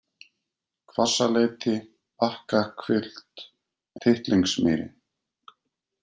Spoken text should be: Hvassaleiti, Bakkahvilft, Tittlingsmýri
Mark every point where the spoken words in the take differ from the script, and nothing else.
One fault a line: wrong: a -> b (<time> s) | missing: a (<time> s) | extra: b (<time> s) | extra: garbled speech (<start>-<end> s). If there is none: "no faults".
no faults